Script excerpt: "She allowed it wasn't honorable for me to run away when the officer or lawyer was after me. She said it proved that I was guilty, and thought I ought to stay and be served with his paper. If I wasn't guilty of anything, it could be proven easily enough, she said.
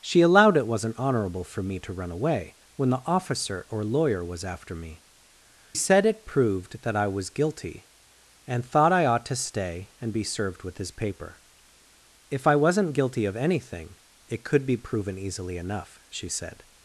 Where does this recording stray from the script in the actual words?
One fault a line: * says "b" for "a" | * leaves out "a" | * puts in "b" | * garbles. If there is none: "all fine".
* leaves out "She"